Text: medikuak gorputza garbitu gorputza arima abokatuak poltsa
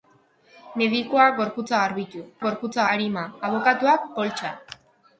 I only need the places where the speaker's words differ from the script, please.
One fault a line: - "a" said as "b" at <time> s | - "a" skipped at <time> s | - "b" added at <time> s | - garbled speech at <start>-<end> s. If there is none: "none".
none